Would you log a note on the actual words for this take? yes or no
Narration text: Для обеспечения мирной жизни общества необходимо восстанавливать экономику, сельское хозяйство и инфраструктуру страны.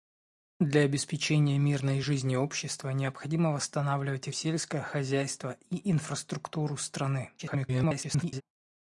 yes